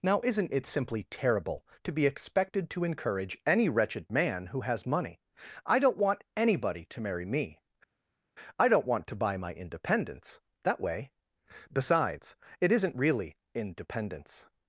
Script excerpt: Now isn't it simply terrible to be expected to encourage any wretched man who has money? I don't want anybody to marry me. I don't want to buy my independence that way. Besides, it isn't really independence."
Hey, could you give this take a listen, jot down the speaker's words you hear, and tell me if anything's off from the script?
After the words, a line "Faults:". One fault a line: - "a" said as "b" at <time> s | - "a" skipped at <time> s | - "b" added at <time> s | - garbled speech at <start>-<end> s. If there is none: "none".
Now isn't it simply terrible to be expected to encourage any wretched man who has money? I don't want anybody to marry me. I don't want to buy my independence that way. Besides, it isn't really independence."
Faults:
none